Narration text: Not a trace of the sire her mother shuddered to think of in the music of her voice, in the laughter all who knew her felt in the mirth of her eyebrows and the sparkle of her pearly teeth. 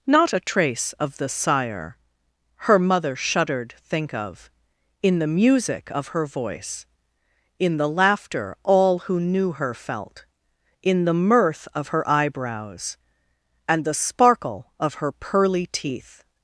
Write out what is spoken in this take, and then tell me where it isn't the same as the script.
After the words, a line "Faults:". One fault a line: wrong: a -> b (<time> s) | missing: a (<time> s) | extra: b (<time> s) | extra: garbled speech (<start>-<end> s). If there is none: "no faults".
Not a trace of the sire her mother shuddered think of in the music of her voice, in the laughter all who knew her felt in the mirth of her eyebrows and the sparkle of her pearly teeth.
Faults:
missing: to (3.7 s)